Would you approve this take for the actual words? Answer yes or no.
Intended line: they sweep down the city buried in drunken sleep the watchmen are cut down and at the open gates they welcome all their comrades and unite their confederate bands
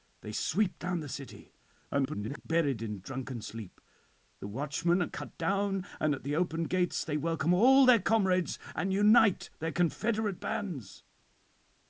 no